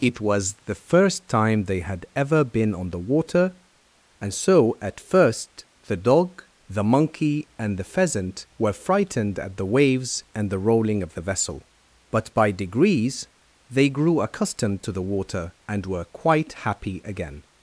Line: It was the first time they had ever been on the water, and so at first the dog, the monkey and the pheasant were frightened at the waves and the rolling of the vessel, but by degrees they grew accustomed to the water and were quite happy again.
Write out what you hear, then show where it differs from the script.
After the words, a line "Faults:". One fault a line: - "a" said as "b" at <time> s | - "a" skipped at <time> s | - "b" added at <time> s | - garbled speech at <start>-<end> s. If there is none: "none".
It was the first time they had ever been on the water, and so at first the dog, the monkey and the pheasant were frightened at the waves and the rolling of the vessel, but by degrees they grew accustomed to the water and were quite happy again.
Faults:
none